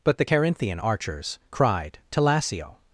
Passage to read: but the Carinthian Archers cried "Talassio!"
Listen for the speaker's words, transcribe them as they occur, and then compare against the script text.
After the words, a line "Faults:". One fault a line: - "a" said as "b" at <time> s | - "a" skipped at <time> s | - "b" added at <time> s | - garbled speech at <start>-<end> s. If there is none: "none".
but the Carinthian Archers cried "Talassio!"
Faults:
none